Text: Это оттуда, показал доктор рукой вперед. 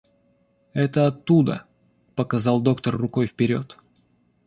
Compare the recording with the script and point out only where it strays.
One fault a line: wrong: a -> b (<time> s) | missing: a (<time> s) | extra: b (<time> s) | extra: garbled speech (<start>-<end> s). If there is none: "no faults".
no faults